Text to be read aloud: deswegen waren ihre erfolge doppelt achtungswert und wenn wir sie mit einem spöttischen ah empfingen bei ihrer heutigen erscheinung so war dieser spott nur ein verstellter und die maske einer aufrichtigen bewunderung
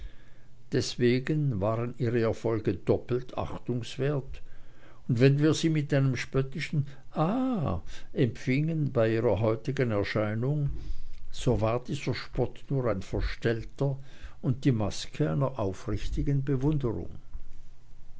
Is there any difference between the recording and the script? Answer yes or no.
no